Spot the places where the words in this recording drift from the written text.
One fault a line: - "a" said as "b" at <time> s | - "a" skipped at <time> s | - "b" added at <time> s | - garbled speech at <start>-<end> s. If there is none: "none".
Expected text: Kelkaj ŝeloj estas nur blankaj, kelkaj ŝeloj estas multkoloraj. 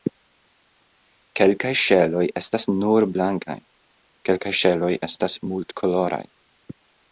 none